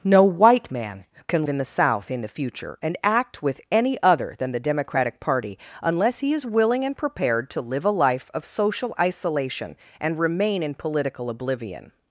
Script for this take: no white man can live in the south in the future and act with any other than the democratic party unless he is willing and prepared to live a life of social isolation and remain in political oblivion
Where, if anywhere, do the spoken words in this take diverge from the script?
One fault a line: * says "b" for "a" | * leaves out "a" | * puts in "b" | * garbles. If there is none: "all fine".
* leaves out "live"